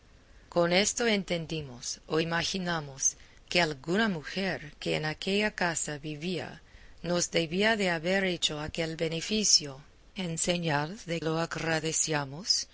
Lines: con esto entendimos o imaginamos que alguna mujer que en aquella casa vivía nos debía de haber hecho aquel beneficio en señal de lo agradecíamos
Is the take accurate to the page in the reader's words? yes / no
yes